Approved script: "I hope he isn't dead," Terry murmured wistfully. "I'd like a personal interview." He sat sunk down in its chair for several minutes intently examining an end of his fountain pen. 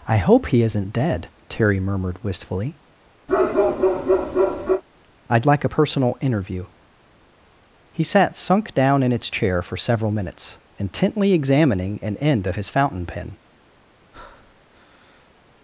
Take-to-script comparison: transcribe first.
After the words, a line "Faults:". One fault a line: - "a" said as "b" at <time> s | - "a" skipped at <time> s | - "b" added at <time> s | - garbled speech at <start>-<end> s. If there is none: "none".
"I hope he isn't dead," Terry murmured wistfully. "I'd like a personal interview." He sat sunk down in its chair for several minutes intently examining an end of his fountain pen.
Faults:
none